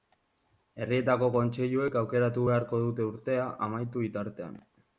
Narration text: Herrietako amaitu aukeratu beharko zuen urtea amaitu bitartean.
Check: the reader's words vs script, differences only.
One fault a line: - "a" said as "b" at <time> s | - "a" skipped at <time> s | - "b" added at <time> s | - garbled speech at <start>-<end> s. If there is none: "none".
- "amaitu" said as "kontseiluek" at 1.4 s
- "zuen" said as "dute" at 2.9 s